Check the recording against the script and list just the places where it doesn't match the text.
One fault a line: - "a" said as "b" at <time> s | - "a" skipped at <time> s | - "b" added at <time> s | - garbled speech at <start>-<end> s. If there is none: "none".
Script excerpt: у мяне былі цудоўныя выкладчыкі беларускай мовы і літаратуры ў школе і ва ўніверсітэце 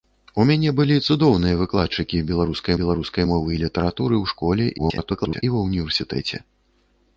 - "беларускай" added at 2.8 s
- garbled speech at 4.8-5.4 s